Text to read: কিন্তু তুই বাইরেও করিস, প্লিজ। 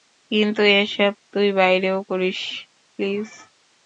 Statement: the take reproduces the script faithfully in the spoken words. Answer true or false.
false